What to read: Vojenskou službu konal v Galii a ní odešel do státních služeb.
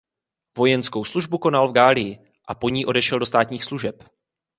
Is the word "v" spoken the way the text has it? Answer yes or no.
yes